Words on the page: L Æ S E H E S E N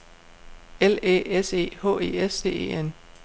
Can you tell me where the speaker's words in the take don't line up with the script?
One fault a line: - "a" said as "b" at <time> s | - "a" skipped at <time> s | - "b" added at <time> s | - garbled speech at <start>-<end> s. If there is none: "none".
none